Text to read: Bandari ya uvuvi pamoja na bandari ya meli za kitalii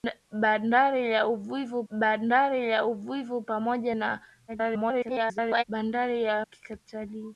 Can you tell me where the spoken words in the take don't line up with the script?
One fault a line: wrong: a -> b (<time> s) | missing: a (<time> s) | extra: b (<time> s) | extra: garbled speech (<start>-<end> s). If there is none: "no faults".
extra: bandari ya uvuvi (1.9 s)
extra: garbled speech (4.5-5.6 s)
missing: meli za (6.5 s)